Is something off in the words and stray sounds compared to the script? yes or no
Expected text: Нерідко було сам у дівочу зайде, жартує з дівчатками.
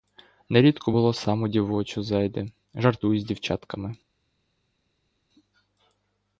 no